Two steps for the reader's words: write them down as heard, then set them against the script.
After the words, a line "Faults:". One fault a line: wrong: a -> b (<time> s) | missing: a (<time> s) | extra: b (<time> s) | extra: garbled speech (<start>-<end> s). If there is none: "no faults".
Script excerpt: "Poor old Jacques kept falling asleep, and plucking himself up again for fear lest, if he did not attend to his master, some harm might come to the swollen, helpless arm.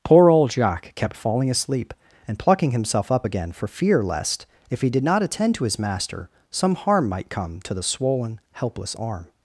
"Poor old Jacques kept falling asleep, and plucking himself up again for fear lest, if he did not attend to his master, some harm might come to the swollen, helpless arm.
Faults:
no faults